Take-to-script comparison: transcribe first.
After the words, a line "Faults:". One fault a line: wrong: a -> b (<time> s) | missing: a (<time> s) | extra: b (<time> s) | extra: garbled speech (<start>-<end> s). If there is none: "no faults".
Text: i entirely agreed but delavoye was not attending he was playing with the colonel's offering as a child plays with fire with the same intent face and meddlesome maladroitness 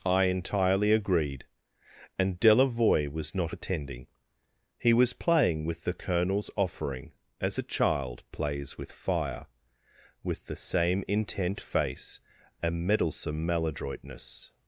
i entirely agreed and delavoye was not attending he was playing with the colonel's offering as a child plays with fire with the same intent face and meddlesome maladroitness
Faults:
wrong: but -> and (2.2 s)